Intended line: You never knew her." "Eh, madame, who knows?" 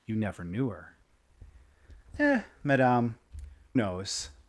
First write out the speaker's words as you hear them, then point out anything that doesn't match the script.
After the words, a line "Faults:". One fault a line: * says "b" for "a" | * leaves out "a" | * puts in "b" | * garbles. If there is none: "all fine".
You never knew her." "Eh, madame, knows?"
Faults:
* leaves out "who"